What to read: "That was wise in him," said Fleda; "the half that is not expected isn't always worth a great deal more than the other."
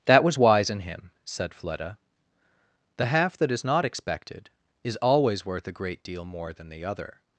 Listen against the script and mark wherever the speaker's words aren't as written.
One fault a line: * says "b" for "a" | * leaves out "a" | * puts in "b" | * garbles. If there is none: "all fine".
* says "is" for "isn't"